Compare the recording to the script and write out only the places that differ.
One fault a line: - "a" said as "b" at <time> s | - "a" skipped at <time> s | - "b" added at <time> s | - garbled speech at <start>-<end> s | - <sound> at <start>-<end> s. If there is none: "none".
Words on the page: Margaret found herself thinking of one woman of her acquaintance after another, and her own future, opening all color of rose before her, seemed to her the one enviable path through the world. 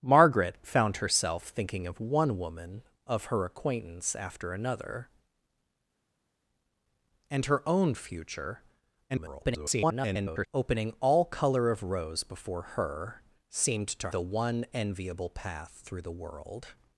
- garbled speech at 9.1-10.5 s
- "her" skipped at 14.1 s